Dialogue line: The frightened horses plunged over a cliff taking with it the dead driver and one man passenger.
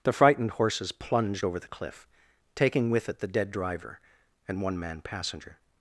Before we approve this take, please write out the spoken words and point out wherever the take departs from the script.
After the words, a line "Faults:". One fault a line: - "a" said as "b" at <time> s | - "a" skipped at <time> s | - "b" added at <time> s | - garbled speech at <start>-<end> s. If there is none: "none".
The frightened horses plunged over the cliff taking with it the dead driver and one man passenger.
Faults:
- "a" said as "the" at 1.6 s